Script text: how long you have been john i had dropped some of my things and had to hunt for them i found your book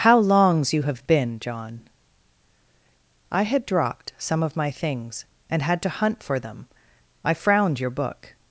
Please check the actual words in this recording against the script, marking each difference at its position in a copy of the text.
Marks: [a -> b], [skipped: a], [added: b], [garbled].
how [long -> longs] you have been john i had dropped some of my things and had to hunt for them i [found -> frowned] your book